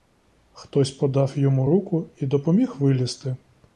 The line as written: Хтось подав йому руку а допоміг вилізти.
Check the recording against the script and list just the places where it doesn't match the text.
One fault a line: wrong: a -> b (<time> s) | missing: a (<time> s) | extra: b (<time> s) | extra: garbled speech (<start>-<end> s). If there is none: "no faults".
wrong: а -> і (2.2 s)